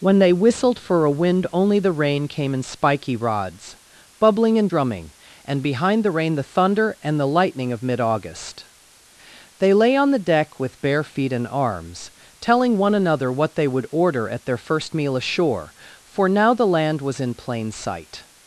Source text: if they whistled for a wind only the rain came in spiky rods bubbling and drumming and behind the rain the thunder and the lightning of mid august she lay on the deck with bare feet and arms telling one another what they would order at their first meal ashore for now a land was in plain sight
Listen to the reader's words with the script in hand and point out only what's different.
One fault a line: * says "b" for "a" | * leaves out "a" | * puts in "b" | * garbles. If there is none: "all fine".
* says "when" for "if"
* says "they" for "she"
* says "the" for "a"